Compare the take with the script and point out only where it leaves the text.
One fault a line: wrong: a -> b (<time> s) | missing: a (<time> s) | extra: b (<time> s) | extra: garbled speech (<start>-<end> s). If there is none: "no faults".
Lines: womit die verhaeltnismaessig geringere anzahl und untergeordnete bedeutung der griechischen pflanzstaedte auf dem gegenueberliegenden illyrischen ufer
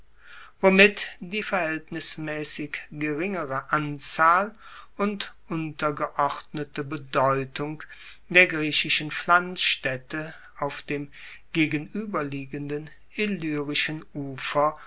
no faults